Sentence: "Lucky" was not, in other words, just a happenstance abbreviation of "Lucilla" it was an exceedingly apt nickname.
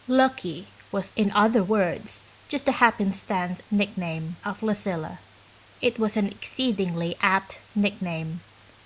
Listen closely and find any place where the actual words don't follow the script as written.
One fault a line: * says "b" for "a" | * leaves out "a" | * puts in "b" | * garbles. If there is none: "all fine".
* leaves out "not"
* says "nickname" for "abbreviation"